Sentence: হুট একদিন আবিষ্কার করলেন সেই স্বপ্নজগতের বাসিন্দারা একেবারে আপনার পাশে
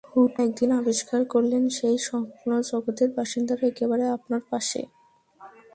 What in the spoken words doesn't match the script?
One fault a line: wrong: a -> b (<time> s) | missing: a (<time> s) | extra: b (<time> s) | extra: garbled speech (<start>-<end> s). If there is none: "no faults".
no faults